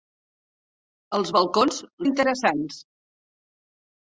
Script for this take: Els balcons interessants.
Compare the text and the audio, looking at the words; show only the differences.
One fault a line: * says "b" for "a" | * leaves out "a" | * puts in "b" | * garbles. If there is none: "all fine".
all fine